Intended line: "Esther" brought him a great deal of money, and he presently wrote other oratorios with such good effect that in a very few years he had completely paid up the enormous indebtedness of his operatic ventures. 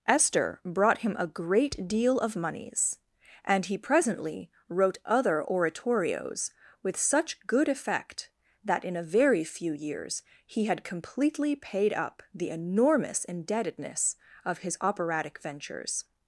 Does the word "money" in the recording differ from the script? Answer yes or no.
yes